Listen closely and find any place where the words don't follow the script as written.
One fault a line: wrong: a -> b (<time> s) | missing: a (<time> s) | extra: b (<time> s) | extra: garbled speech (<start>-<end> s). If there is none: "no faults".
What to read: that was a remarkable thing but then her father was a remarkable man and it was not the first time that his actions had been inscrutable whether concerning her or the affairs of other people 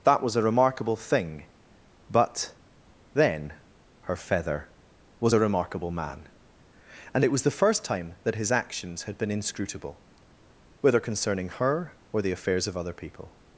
wrong: father -> feather (4.2 s)
missing: not (7.4 s)